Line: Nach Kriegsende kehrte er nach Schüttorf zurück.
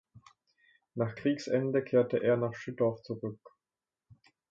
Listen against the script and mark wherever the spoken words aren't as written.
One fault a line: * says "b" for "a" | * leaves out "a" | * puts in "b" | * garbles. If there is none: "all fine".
all fine